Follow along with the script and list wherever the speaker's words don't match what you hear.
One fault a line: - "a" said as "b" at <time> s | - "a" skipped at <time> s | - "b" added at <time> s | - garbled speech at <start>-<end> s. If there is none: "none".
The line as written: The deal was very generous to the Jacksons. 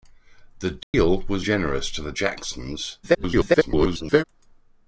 - "very" skipped at 1.4 s
- garbled speech at 3.0-4.2 s